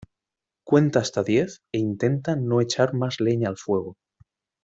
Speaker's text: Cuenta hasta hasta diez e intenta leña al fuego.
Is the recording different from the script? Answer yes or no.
yes